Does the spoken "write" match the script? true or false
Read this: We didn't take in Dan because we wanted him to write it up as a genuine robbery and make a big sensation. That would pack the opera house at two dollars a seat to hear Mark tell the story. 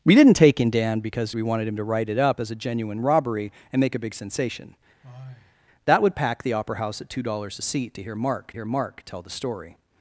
true